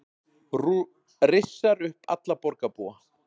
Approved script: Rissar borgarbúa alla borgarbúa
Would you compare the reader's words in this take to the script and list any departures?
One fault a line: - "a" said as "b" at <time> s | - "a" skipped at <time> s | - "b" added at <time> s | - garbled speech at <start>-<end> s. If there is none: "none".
- "borgarbúa" said as "upp" at 1.9 s